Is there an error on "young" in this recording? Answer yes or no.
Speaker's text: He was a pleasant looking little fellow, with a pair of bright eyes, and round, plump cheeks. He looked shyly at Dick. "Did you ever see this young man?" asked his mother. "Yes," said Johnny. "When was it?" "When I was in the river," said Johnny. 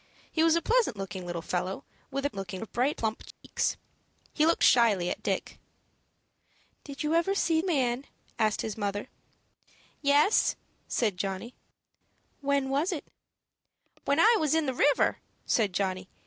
yes